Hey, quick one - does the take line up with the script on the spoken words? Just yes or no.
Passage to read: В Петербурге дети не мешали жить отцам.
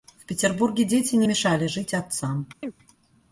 yes